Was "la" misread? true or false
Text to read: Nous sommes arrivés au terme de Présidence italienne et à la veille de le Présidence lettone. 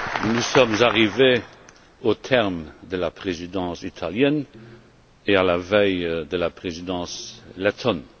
false